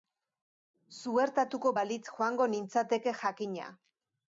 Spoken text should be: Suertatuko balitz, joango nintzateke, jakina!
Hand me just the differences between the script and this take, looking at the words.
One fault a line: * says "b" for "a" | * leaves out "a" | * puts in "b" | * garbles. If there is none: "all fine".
all fine